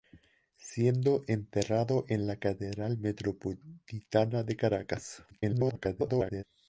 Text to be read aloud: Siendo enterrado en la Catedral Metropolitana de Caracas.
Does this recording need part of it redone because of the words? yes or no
yes